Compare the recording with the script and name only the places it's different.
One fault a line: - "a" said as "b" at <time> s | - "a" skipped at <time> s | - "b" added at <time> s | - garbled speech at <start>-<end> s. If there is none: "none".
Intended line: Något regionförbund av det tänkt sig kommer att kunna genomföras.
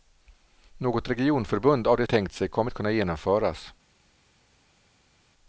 none